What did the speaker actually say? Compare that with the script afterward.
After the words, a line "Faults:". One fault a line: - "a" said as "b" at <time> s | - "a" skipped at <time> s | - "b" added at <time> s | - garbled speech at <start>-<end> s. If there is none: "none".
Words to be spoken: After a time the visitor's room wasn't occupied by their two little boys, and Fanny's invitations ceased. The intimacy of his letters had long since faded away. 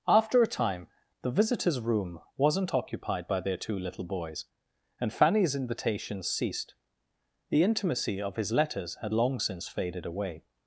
After a time the visitor's room wasn't occupied by their two little boys, and Fanny's invitations ceased. The intimacy of his letters had long since faded away.
Faults:
none